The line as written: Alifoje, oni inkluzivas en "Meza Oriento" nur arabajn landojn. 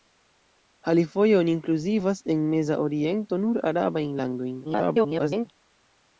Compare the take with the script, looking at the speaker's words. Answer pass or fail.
fail